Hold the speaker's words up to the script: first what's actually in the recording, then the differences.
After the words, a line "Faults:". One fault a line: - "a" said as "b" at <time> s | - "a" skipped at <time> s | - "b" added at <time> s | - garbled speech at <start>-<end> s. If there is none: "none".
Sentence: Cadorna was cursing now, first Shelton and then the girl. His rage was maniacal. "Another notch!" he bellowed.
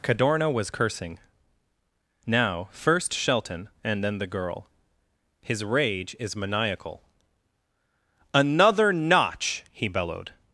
Cadorna was cursing now, first Shelton and then the girl. His rage is maniacal. "Another notch!" he bellowed.
Faults:
- "was" said as "is" at 6.2 s